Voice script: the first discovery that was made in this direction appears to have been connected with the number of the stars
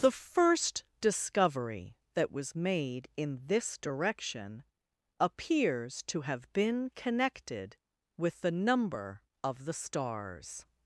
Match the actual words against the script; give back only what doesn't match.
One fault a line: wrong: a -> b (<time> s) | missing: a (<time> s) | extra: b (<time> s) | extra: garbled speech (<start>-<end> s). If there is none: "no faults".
no faults